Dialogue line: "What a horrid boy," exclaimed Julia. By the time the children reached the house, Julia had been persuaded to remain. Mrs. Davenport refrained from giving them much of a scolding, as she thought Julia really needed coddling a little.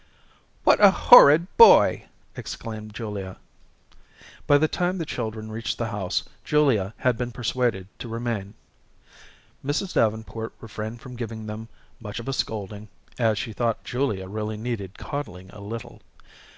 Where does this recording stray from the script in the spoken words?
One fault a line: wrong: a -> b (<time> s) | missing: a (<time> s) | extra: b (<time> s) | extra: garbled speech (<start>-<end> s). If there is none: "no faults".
no faults